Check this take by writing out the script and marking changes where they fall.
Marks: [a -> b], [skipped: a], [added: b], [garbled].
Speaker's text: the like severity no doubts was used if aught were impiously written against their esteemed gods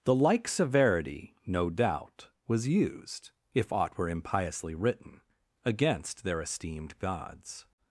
the like severity no [doubts -> doubt] was used if aught were impiously written against their esteemed gods